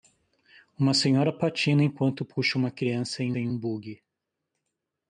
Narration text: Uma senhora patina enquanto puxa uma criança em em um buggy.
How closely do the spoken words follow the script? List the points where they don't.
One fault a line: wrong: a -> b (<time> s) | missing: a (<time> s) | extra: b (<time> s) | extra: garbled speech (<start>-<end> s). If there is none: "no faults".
no faults